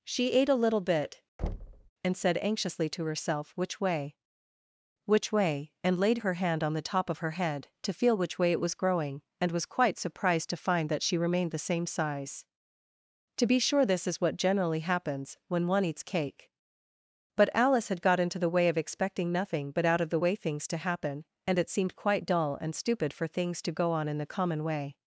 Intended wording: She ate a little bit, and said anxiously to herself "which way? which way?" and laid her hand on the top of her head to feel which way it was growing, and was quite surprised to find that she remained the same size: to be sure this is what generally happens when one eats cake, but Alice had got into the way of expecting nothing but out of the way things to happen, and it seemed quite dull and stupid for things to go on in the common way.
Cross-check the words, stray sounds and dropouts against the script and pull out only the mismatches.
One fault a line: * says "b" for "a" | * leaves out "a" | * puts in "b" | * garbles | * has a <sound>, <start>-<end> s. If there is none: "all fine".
* has a thud, 1.4-1.9 s